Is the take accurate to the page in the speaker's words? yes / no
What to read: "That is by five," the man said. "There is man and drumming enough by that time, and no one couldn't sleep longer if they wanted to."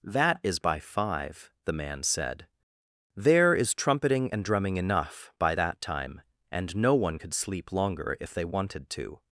no